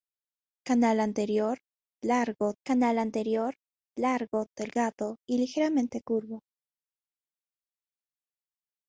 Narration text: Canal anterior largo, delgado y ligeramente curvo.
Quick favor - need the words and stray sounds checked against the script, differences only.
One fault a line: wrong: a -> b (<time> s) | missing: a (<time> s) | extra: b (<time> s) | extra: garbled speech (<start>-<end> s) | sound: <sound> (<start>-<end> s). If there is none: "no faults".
extra: canal anterior largo (2.6 s)